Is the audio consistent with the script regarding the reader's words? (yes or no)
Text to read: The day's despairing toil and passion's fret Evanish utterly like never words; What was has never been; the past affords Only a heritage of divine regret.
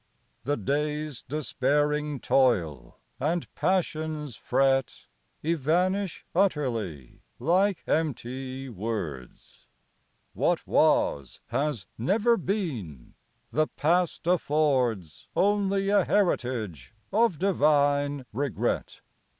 no